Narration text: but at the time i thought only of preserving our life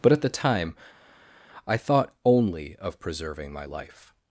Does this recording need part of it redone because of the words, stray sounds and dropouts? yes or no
yes